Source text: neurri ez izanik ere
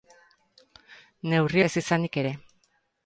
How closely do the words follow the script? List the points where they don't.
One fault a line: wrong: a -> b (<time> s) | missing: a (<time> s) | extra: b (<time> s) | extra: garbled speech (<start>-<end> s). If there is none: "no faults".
no faults